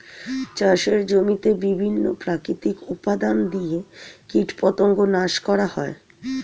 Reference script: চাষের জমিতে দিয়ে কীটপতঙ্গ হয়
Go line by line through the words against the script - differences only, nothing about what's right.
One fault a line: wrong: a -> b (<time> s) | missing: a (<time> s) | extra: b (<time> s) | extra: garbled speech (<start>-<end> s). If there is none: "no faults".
extra: বিভিন্ন প্রাকৃতিক উপাদান (1.6 s)
extra: নাশ করা (5.1 s)